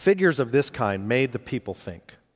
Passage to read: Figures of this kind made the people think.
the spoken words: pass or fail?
pass